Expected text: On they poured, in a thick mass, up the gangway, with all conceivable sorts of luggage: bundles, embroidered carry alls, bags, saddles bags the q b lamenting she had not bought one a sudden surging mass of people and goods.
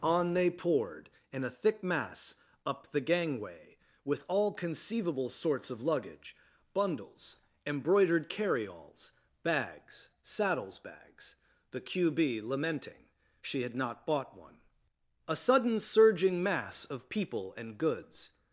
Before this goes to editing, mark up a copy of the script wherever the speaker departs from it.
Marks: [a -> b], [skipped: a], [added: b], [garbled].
On they poured, in a thick mass, up the gangway, with all conceivable sorts of luggage: bundles, embroidered carry alls, bags, saddles bags the q b lamenting she had not bought one a sudden surging mass of people and goods.